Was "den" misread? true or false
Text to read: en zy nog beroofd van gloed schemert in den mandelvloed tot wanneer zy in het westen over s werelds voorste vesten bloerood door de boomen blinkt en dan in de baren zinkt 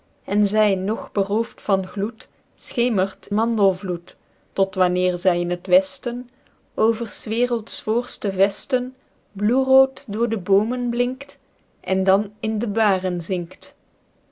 true